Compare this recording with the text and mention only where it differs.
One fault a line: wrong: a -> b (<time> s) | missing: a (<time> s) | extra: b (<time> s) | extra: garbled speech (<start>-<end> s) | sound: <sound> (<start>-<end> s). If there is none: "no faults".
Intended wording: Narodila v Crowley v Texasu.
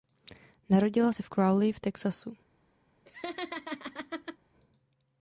extra: se (1.1 s)
sound: laugh (3.0-4.4 s)